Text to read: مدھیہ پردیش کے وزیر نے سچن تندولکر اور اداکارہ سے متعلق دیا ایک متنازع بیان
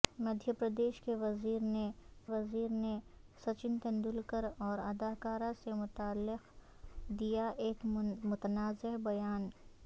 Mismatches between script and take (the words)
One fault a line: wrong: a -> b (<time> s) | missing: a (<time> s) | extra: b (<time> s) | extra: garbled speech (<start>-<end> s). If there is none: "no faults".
extra: وزیر نے (2.2 s)